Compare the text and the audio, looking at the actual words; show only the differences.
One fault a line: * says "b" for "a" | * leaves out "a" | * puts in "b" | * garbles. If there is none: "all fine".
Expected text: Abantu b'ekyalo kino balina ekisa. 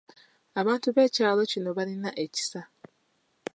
all fine